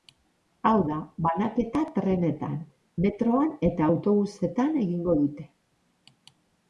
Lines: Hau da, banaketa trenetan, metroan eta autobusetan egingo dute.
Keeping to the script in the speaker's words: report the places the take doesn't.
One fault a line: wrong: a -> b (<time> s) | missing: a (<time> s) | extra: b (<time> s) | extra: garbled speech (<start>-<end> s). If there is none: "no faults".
no faults